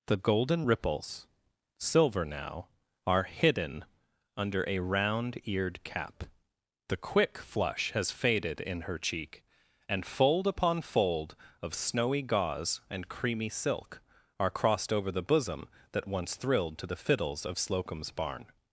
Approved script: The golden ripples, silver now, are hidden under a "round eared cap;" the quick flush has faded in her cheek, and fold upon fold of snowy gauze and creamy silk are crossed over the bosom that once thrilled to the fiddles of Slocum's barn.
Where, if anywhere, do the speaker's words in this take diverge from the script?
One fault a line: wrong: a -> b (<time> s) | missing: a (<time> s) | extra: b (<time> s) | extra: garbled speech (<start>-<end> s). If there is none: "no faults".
no faults